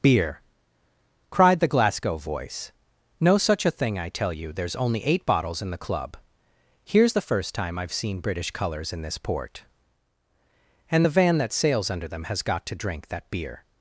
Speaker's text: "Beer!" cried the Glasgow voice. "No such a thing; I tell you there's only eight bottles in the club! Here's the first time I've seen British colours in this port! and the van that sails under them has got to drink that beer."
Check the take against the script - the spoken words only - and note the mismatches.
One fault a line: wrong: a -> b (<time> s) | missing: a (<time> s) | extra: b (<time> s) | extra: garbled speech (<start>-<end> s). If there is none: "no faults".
no faults